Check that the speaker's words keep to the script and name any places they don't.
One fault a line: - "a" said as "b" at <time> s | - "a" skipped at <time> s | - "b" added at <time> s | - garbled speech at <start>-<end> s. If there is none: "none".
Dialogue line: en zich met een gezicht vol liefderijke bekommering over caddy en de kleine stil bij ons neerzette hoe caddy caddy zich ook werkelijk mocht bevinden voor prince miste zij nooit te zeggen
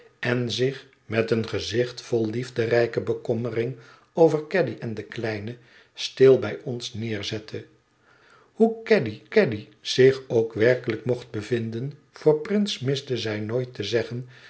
none